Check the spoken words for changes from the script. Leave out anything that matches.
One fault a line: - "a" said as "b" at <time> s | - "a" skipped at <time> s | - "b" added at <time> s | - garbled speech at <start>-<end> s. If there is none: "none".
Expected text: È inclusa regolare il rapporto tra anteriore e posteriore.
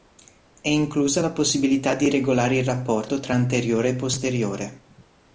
- "la possibilità di" added at 1.2 s